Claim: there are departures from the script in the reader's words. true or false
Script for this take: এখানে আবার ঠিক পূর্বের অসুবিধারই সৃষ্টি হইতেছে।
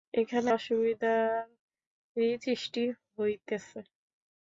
true